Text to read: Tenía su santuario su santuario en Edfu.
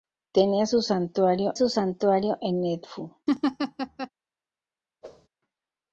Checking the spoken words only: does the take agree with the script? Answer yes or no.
yes